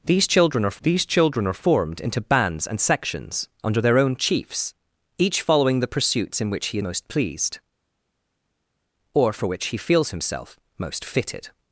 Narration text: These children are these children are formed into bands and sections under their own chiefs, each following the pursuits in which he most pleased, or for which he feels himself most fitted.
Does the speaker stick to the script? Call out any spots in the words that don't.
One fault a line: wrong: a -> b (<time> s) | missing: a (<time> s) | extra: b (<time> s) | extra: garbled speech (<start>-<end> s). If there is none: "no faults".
no faults